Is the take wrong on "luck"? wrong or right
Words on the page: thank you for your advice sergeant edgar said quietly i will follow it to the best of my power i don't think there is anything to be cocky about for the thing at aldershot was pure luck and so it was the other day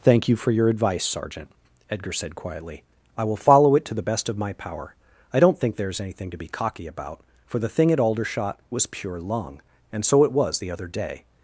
wrong